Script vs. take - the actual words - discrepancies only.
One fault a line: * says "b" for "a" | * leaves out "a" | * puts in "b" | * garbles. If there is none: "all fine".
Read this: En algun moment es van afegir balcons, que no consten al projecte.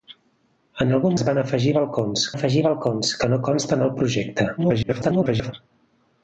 * leaves out "moment"
* puts in "afegir balcons"
* garbles